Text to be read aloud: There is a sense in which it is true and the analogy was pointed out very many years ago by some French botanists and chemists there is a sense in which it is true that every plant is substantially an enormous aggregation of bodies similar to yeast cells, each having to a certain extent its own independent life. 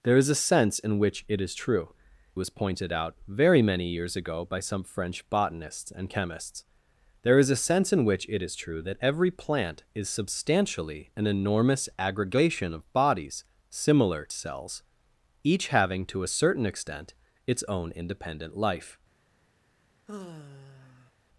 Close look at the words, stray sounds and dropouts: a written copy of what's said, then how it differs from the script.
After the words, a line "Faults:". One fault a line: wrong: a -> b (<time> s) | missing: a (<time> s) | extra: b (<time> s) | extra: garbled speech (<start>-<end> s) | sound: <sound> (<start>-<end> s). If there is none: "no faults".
There is a sense in which it is true was pointed out very many years ago by some French botanists and chemists there is a sense in which it is true that every plant is substantially an enormous aggregation of bodies similar cells, each having to a certain extent its own independent life.
Faults:
missing: and the analogy (1.9 s)
missing: to yeast (14.3 s)
sound: sigh (20.1-21.1 s)